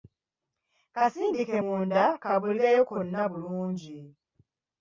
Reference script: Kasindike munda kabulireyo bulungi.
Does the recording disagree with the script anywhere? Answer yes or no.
yes